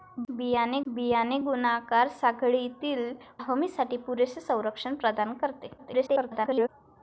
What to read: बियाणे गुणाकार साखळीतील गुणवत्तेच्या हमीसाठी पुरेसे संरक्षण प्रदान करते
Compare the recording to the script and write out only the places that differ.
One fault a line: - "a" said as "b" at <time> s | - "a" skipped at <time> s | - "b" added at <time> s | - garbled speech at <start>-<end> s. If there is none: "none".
- "बियाणे" added at 0.9 s
- "गुणवत्तेच्या" skipped at 3.1 s
- garbled speech at 5.8-6.7 s